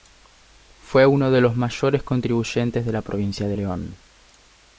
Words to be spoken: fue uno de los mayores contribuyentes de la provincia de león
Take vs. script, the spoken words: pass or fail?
pass